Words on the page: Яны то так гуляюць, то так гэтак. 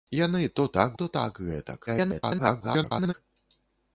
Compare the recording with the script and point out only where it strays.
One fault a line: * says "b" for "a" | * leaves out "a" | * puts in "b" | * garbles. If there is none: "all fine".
* leaves out "гуляюць"
* garbles